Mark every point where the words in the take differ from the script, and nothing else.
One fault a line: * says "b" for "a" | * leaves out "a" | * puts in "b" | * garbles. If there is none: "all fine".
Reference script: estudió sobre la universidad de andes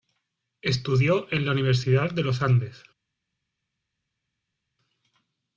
* says "en" for "sobre"
* puts in "los"